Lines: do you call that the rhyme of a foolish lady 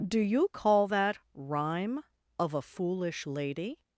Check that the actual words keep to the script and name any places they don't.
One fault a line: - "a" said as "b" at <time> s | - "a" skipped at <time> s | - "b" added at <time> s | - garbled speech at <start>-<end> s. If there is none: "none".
- "the" skipped at 1.2 s